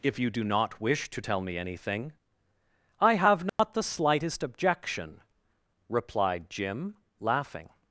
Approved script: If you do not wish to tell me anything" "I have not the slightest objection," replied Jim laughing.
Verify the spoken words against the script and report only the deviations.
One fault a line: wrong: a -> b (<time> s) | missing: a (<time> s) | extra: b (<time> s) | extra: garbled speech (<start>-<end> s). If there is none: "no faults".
no faults